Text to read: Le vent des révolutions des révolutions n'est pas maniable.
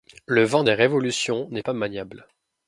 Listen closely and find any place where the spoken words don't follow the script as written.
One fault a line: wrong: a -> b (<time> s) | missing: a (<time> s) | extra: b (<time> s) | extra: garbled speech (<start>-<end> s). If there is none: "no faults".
missing: des révolutions (1.5 s)